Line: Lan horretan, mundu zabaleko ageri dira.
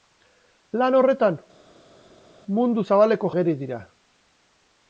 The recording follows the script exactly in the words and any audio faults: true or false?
true